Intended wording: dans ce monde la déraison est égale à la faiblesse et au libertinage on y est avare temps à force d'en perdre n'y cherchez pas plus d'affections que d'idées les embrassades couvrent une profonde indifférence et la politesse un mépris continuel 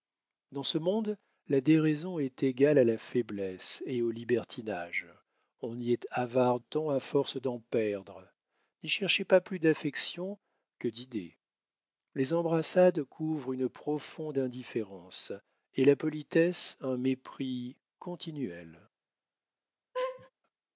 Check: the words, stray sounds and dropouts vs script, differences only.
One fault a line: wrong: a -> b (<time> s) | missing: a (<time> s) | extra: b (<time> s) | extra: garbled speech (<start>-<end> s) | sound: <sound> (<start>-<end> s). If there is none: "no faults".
sound: laugh (19.9-20.3 s)